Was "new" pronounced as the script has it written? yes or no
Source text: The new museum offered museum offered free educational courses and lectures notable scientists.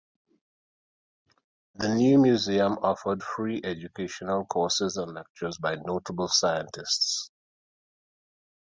yes